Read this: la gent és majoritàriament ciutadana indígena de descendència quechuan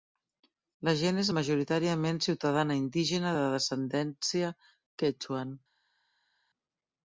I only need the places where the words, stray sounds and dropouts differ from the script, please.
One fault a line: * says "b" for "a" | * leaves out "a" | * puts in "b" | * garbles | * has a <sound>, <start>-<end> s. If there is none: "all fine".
all fine